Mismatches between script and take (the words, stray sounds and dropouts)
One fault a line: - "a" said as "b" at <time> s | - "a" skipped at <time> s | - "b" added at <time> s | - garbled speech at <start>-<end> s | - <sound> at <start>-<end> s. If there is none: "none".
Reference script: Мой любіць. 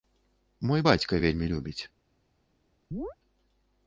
- "бацька вельмі" added at 0.9 s
- chirp at 2.9-3.2 s